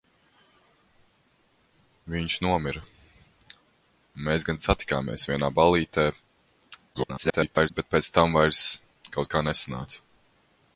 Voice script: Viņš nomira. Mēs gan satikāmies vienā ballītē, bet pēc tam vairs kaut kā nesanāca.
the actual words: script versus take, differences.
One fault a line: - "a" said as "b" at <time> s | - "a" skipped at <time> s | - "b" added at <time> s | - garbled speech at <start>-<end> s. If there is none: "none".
- garbled speech at 6.9-7.7 s